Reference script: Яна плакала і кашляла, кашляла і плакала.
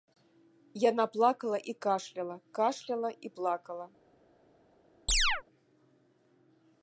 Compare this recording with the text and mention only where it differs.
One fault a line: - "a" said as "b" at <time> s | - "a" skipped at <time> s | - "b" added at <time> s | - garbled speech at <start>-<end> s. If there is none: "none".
none